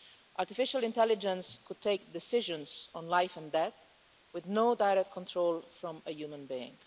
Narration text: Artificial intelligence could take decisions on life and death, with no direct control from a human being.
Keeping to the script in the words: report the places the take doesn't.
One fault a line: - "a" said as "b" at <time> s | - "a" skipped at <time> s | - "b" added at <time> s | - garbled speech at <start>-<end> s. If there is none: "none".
none